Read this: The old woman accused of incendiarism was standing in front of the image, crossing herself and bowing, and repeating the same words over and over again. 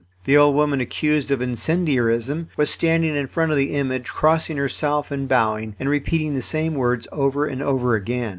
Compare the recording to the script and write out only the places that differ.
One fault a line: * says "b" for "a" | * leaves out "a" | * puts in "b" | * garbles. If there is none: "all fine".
all fine